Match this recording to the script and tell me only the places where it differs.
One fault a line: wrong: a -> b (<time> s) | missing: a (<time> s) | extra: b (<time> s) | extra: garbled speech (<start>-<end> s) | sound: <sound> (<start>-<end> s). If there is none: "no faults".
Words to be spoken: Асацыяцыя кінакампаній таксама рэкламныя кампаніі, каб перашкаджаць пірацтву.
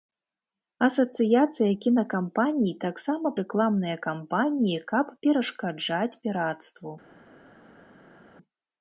no faults